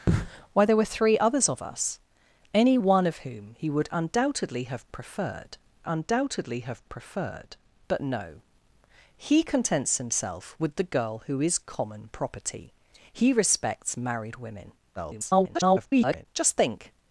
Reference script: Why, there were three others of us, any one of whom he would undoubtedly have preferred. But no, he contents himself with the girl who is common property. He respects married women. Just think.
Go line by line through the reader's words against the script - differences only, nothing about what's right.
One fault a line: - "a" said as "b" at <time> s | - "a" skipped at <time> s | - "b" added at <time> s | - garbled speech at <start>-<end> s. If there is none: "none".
- "undoubtedly have preferred" added at 5.9 s
- garbled speech at 15.0-16.3 s